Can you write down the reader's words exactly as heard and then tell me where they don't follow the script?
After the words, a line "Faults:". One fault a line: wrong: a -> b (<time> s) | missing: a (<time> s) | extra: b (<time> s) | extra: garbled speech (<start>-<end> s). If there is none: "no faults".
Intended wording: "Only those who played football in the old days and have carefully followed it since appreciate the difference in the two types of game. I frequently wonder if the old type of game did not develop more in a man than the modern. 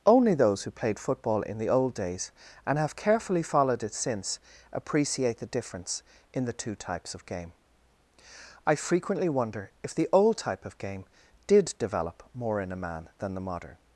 "Only those who played football in the old days and have carefully followed it since appreciate the difference in the two types of game. I frequently wonder if the old type of game did develop more in a man than the modern.
Faults:
missing: not (11.7 s)